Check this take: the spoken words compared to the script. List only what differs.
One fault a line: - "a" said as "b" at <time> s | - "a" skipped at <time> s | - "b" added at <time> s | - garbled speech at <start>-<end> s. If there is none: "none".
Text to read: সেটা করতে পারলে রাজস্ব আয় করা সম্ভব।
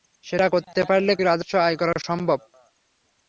none